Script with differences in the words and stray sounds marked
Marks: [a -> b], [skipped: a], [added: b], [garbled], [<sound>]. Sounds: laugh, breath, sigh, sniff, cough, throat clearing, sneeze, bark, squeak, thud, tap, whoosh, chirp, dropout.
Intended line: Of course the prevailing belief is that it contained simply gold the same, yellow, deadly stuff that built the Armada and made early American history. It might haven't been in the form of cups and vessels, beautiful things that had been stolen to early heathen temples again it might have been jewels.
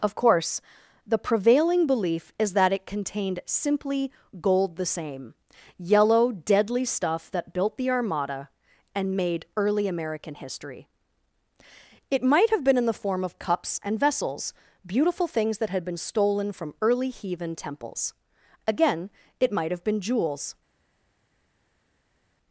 Of course the prevailing belief is that it contained simply gold the same, yellow, deadly stuff that built the Armada and made early American history. It might [haven't -> have] been in the form of cups and vessels, beautiful things that had been stolen [to -> from] early heathen temples again it might have been jewels.